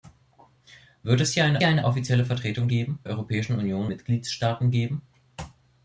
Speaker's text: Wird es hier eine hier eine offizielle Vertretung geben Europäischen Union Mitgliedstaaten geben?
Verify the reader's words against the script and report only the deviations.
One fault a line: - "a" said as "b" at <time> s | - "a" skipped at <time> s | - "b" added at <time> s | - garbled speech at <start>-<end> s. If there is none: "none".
none